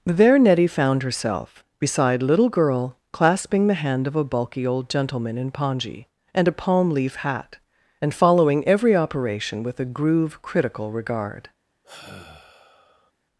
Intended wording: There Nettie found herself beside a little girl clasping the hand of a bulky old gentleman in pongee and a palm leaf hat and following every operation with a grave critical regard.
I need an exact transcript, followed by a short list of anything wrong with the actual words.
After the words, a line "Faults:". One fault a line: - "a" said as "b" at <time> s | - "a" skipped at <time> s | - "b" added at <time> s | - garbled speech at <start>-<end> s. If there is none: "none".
There Nettie found herself beside little girl clasping the hand of a bulky old gentleman in pongee and a palm leaf hat and following every operation with a groove critical regard.
Faults:
- "a" skipped at 2.2 s
- "grave" said as "groove" at 9.8 s